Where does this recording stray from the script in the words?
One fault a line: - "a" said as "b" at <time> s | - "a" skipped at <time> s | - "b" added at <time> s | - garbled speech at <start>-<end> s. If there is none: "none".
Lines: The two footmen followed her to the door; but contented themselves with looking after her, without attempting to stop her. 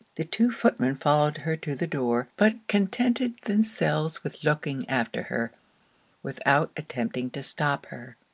none